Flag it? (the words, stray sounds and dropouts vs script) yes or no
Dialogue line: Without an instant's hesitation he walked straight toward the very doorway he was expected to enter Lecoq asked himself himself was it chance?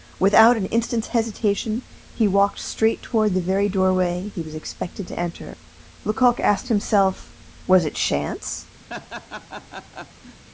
yes